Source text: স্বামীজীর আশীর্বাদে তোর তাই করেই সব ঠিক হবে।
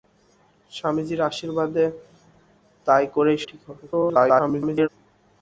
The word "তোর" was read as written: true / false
false